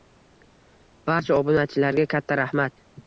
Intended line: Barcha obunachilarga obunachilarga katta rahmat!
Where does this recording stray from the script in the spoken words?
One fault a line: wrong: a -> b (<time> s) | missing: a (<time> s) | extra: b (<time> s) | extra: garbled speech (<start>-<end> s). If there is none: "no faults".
missing: obunachilarga (2.1 s)